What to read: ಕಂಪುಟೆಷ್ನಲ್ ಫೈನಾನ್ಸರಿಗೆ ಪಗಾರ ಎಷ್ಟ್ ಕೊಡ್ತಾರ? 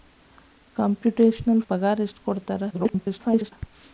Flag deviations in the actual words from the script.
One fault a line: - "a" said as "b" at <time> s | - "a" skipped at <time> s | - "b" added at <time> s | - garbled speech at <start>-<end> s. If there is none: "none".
- "ಫೈನಾನ್ಸರಿಗೆ" skipped at 1.6 s
- garbled speech at 2.7-3.5 s